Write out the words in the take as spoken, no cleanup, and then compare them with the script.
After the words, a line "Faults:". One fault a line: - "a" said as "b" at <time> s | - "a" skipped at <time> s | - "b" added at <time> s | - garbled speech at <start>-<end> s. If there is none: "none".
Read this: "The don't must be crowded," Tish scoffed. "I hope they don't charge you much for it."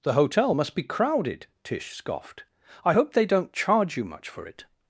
"The hotel must be crowded," Tish scoffed. "I hope they don't charge you much for it."
Faults:
- "don't" said as "hotel" at 0.1 s